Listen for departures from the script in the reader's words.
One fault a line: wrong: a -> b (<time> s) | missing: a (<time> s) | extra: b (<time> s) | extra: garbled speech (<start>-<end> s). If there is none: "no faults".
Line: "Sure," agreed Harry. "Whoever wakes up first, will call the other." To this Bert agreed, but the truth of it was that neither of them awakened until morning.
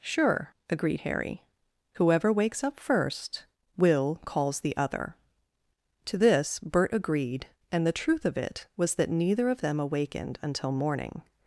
wrong: call -> calls (4.2 s)
wrong: but -> and (7.7 s)